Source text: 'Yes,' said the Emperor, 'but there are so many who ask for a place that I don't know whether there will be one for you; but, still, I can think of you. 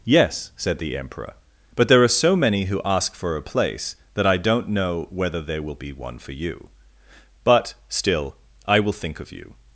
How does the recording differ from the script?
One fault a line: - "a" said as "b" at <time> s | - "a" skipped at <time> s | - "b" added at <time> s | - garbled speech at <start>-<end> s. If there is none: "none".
- "can" said as "will" at 8.8 s